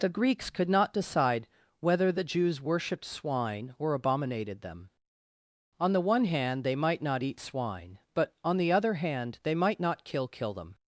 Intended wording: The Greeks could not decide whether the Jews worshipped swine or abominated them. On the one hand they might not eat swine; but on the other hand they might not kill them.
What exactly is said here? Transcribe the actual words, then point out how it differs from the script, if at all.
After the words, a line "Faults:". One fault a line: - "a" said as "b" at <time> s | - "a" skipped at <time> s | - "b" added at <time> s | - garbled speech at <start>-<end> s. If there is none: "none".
The Greeks could not decide whether the Jews worshipped swine or abominated them. On the one hand they might not eat swine; but on the other hand they might not kill kill them.
Faults:
- "kill" added at 10.3 s